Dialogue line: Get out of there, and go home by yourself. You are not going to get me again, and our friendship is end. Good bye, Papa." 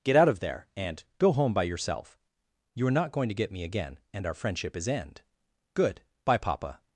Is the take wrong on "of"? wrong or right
right